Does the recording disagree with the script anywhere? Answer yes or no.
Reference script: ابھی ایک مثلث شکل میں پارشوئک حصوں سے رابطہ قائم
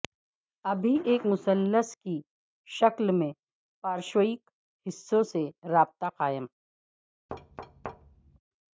yes